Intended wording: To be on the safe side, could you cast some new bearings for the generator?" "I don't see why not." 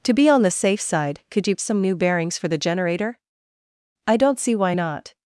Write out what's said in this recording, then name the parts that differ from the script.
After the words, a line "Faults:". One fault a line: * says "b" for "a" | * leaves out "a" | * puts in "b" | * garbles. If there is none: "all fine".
To be on the safe side, could you some new bearings for the generator?" "I don't see why not."
Faults:
* leaves out "cast"